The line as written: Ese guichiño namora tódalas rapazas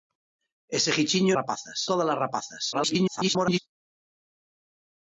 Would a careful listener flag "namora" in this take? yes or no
yes